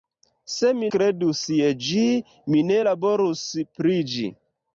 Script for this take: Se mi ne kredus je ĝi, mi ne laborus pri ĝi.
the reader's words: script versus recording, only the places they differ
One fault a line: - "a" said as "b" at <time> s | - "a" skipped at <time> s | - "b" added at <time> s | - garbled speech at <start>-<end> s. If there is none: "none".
- "ne" skipped at 0.9 s